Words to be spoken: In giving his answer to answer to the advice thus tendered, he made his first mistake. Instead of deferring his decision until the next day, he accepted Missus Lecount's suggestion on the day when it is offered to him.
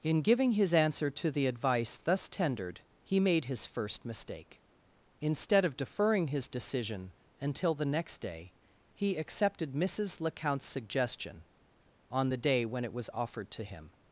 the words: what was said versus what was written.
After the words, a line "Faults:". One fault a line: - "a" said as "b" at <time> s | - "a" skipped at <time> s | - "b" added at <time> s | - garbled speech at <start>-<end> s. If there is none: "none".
In giving his answer to the advice thus tendered, he made his first mistake. Instead of deferring his decision until the next day, he accepted Missus Lecount's suggestion on the day when it was offered to him.
Faults:
- "answer to" skipped at 1.3 s
- "is" said as "was" at 12.9 s